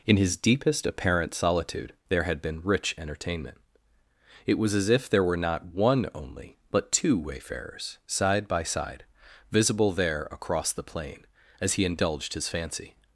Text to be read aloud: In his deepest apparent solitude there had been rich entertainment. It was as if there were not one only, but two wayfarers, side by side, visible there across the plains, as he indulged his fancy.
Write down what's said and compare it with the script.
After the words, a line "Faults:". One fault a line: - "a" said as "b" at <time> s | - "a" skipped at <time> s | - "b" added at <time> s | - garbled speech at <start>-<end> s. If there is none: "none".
In his deepest apparent solitude there had been rich entertainment. It was as if there were not one only, but two wayfarers, side by side, visible there across the plain, as he indulged his fancy.
Faults:
- "plains" said as "plain" at 10.8 s